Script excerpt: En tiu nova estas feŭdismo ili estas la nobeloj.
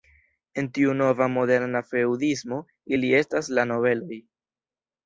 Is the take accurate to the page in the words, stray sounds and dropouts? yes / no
no